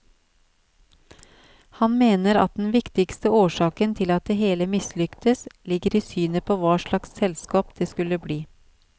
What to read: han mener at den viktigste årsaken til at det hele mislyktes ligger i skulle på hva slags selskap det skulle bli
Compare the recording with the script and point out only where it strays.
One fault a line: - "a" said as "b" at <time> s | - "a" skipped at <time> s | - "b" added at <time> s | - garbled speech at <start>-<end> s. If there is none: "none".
- "skulle" said as "synet" at 6.1 s